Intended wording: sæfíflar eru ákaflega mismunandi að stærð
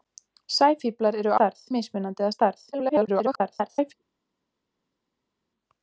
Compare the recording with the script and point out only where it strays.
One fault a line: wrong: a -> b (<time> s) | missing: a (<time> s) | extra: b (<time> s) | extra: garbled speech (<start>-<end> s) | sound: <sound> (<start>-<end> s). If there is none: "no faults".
wrong: ákaflega -> stærð (1.4 s)
extra: garbled speech (2.7-3.9 s)